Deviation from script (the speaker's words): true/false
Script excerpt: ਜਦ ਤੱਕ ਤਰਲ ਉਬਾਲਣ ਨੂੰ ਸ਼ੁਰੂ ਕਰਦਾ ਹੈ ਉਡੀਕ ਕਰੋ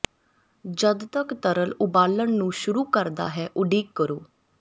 false